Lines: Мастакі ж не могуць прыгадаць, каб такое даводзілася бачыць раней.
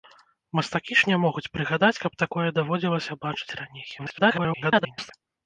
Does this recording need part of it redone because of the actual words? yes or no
yes